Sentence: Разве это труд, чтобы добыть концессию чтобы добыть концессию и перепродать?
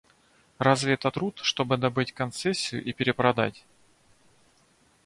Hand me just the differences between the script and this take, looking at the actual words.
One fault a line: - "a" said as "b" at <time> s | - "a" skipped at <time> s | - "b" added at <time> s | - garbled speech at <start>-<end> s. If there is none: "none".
- "чтобы добыть концессию" skipped at 2.8 s